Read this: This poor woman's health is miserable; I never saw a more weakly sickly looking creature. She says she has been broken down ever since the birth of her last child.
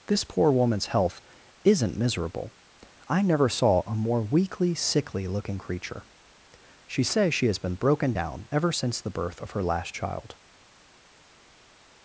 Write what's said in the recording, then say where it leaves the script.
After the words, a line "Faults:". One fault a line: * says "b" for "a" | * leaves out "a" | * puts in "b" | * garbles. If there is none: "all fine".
This poor woman's health isn't miserable; I never saw a more weakly sickly looking creature. She says she has been broken down ever since the birth of her last child.
Faults:
* says "isn't" for "is"